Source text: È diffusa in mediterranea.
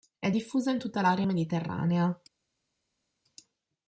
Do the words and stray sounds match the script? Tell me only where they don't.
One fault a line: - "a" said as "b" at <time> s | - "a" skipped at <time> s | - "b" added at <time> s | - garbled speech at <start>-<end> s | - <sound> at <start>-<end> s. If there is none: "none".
- "tutta l'area" added at 0.8 s